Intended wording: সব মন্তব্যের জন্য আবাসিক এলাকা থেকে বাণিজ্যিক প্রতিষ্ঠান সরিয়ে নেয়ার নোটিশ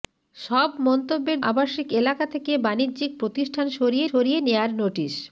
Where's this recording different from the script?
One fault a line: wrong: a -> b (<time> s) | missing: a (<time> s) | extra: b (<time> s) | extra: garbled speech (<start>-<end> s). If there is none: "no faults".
missing: জন্য (1.4 s)
extra: সরিয়ে (4.1 s)